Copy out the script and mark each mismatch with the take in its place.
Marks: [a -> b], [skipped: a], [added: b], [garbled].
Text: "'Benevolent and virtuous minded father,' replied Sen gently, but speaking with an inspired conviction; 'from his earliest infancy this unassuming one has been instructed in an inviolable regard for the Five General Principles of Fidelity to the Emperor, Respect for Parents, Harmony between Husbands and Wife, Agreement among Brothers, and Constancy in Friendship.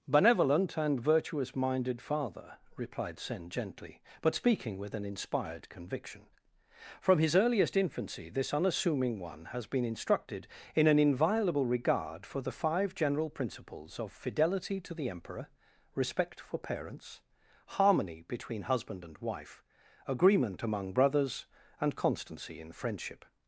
"'Benevolent and virtuous minded father,' replied Sen gently, but speaking with an inspired conviction; 'from his earliest infancy this unassuming one has been instructed in an inviolable regard for the Five General Principles of Fidelity to the Emperor, Respect for Parents, Harmony between [Husbands -> Husband] and Wife, Agreement among Brothers, and Constancy in Friendship.